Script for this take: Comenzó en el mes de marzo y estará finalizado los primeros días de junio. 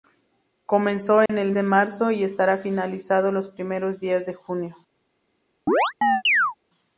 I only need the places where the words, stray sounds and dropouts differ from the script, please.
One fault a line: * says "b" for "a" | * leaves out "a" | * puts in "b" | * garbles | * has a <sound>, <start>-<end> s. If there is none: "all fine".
* has a dropout, 1.3-1.3 s
* leaves out "mes"
* has a chirp, 5.7-6.5 s